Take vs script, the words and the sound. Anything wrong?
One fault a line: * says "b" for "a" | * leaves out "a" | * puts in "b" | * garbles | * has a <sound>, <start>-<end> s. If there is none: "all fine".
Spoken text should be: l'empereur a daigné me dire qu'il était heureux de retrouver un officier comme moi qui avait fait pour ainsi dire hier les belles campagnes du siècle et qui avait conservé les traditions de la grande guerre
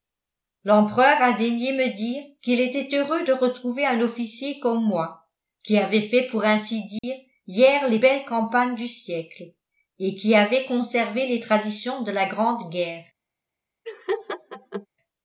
* has a dropout, 7.0-7.0 s
* has a laugh, 13.8-14.9 s